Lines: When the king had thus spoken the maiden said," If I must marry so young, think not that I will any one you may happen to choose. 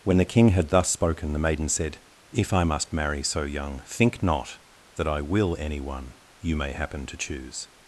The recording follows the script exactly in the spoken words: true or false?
true